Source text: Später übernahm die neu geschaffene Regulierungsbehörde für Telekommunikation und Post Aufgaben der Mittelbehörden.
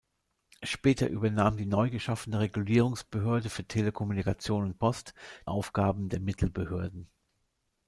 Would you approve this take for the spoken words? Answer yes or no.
yes